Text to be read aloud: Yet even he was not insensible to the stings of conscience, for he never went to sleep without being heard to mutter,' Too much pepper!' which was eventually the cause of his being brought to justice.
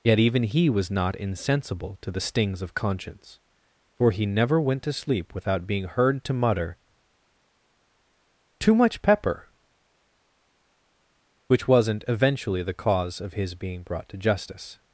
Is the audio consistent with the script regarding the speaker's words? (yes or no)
no